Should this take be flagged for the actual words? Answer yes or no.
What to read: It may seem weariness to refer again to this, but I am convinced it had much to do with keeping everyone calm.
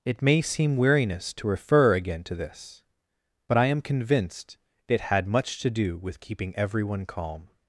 no